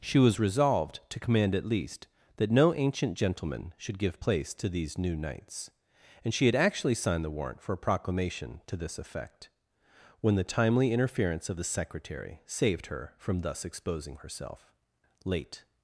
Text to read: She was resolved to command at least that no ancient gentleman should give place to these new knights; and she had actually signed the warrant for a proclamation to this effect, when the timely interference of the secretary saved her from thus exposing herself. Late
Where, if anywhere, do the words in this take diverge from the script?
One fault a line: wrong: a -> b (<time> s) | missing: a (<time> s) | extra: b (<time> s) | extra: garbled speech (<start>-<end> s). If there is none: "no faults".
no faults